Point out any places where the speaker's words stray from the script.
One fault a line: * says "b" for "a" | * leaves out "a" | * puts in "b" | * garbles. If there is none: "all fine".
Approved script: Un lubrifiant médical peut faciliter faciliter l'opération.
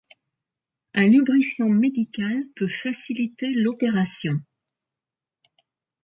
* leaves out "faciliter"